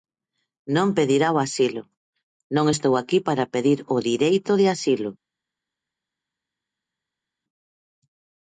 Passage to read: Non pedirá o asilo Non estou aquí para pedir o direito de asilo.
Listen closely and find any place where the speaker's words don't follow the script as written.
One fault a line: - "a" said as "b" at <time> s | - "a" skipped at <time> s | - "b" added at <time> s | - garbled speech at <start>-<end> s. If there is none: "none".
none